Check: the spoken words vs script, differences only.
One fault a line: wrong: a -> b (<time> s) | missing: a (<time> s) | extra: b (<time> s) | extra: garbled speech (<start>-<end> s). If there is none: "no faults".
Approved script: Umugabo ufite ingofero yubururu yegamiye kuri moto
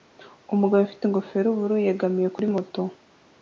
no faults